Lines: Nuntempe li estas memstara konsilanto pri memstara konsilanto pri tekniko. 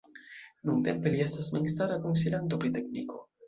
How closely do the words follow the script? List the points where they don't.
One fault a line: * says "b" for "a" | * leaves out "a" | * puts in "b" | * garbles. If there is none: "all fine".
* leaves out "memstara konsilanto pri"